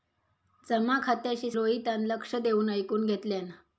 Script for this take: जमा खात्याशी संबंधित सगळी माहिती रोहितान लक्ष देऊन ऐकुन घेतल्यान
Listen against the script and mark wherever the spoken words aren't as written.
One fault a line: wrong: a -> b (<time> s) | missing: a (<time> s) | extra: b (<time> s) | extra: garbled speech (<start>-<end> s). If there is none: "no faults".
missing: संबंधित सगळी माहिती (1.5 s)